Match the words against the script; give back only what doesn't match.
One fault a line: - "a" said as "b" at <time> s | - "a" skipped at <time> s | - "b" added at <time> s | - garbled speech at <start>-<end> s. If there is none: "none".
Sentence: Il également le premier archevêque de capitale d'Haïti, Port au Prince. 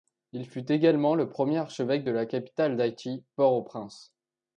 - "fut" added at 0.5 s
- "la" added at 2.1 s